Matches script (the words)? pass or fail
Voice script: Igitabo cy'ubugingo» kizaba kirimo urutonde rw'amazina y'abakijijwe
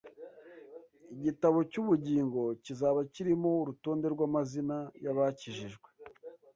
pass